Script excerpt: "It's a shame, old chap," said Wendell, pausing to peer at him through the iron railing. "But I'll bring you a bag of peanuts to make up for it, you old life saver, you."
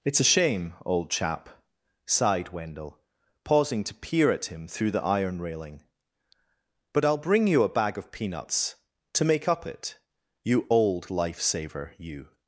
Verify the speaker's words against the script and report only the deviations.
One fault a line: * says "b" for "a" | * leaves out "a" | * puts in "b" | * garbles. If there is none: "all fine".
* says "sighed" for "said"
* leaves out "for"